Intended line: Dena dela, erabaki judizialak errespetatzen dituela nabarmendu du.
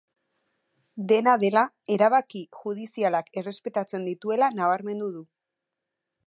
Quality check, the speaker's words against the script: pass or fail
pass